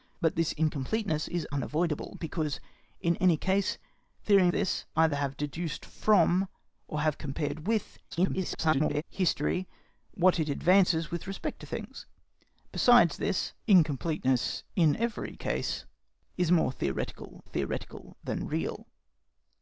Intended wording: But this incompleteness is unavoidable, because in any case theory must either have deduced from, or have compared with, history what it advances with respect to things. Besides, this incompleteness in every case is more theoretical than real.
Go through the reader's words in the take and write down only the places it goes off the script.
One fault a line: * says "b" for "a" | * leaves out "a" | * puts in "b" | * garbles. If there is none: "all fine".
* says "this" for "must"
* garbles
* puts in "theoretical"